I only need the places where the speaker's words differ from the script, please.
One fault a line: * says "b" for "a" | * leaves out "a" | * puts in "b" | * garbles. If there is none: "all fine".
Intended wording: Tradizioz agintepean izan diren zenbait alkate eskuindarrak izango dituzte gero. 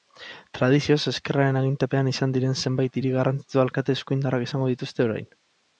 * puts in "ezkerraren"
* puts in "hiri garrantzitsu"
* says "orain" for "gero"